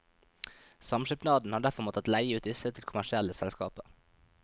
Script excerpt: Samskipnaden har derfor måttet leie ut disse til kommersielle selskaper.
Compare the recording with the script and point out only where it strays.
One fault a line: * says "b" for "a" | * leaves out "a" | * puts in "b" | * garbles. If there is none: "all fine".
all fine